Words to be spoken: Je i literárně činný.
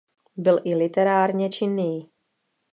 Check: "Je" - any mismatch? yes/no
yes